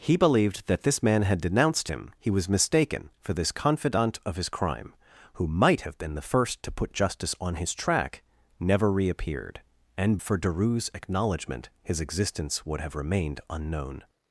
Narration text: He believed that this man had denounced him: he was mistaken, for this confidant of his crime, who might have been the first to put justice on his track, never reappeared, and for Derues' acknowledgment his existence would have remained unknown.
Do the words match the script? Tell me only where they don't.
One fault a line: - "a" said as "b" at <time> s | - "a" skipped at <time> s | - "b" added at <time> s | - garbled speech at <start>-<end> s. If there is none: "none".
none